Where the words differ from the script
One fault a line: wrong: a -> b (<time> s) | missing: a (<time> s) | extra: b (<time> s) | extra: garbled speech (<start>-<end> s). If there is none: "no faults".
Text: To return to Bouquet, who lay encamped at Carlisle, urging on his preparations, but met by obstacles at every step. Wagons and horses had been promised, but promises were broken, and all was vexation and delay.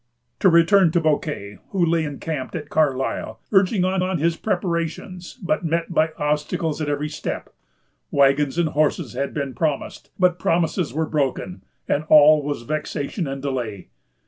extra: on (4.0 s)